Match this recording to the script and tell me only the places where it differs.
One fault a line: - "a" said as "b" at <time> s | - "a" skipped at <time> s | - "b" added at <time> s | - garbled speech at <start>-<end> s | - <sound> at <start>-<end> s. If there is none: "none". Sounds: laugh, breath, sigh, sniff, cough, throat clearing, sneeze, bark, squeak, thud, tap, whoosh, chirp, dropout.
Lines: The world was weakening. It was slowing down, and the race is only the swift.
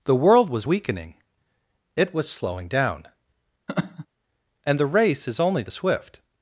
- laugh at 3.7-4.1 s